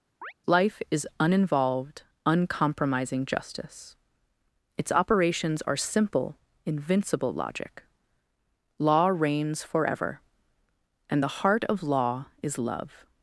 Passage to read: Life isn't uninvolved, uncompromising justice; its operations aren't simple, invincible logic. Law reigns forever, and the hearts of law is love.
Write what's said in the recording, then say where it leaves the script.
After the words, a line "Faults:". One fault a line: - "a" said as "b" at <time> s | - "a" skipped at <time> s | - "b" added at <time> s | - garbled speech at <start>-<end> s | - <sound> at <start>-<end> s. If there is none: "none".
Life is uninvolved, uncompromising justice; its operations are simple, invincible logic. Law reigns forever, and the heart of law is love.
Faults:
- chirp at 0.2-0.3 s
- "isn't" said as "is" at 0.9 s
- "aren't" said as "are" at 5.6 s
- "hearts" said as "heart" at 11.4 s